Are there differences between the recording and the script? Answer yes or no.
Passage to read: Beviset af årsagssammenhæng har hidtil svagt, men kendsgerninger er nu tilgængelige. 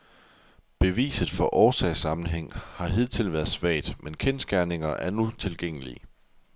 yes